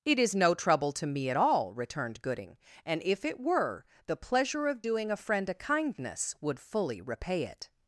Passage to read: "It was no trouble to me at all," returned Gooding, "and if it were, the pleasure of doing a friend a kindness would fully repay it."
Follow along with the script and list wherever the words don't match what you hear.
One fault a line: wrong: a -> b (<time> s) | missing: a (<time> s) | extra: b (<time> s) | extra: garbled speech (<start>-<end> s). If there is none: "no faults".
wrong: was -> is (0.2 s)